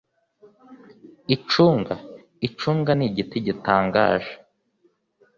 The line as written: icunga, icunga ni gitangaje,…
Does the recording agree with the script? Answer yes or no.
no